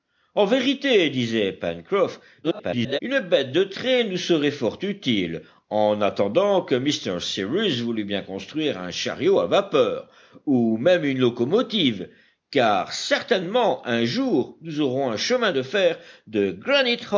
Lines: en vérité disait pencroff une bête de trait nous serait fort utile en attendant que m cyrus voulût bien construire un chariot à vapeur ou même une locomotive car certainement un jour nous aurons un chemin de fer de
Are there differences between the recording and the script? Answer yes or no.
yes